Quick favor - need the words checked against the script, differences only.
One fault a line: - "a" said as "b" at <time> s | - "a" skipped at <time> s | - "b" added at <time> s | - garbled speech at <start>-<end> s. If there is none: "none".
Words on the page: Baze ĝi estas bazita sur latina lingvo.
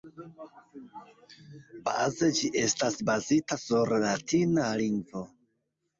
none